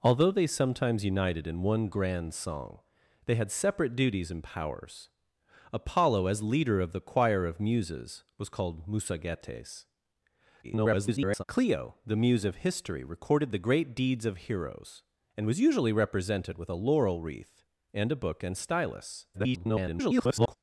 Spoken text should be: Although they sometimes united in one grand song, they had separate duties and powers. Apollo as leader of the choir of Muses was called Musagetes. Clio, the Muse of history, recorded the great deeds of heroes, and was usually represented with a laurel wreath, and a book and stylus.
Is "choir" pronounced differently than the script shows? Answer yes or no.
no